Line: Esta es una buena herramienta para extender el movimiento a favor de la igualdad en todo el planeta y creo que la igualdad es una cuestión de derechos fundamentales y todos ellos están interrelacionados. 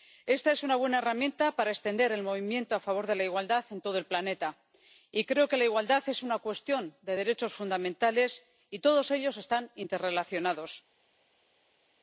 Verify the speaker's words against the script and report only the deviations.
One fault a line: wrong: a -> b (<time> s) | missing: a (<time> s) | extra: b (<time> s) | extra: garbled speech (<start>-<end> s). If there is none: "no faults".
no faults